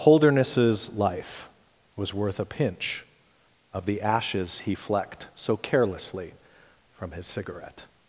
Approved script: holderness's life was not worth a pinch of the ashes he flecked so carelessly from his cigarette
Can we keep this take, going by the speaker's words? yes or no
no